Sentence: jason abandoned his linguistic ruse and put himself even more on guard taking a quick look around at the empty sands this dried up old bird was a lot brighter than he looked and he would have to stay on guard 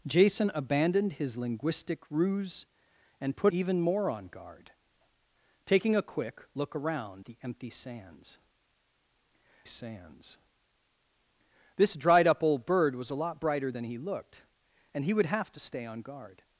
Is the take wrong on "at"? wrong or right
wrong